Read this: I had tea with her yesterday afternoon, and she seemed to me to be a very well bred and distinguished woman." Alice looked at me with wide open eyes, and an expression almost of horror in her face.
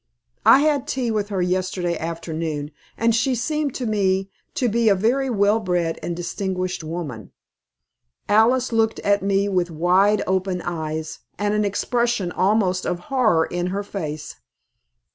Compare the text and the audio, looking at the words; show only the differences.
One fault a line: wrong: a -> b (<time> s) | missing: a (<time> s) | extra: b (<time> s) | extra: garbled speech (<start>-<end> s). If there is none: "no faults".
no faults